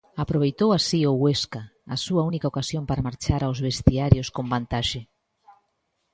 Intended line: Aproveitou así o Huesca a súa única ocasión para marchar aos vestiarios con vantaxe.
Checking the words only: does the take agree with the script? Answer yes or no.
yes